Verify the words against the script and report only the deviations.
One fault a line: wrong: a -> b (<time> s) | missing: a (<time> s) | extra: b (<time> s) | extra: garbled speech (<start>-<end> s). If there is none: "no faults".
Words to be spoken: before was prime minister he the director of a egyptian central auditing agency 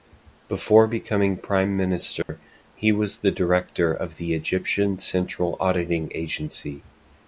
wrong: was -> becoming (0.9 s)
extra: was (2.9 s)
wrong: a -> the (4.1 s)